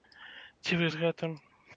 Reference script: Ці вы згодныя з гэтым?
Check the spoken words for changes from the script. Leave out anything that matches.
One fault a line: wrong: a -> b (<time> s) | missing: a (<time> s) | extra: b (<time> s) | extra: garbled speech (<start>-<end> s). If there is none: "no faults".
missing: згодныя (0.9 s)